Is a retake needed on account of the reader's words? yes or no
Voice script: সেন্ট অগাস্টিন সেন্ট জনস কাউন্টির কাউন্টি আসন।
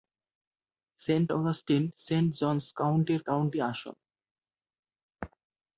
no